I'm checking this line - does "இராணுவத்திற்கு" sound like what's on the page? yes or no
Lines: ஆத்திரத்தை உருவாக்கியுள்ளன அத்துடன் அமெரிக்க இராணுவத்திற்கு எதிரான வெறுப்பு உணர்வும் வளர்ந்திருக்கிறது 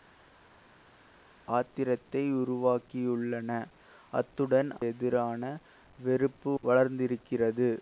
no